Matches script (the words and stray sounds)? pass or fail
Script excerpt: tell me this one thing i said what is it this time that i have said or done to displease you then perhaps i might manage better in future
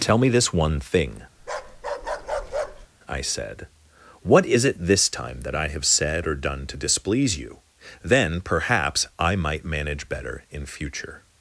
fail